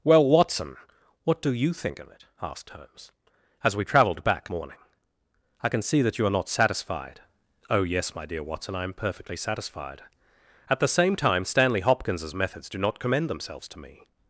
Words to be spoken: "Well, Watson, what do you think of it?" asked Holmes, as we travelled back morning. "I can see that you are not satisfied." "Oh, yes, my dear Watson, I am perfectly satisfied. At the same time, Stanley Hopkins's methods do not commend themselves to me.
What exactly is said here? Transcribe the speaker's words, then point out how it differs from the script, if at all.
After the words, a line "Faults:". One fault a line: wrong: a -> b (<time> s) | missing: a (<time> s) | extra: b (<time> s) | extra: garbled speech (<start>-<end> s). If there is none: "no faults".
"Well, Watson, what do you think of it?" asked Holmes, as we travelled back morning. "I can see that you are not satisfied." "Oh, yes, my dear Watson, I am perfectly satisfied. At the same time, Stanley Hopkins's methods do not commend themselves to me.
Faults:
no faults